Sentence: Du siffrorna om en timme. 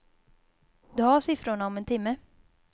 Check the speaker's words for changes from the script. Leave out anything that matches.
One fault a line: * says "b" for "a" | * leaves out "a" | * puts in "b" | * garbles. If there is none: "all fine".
* puts in "har"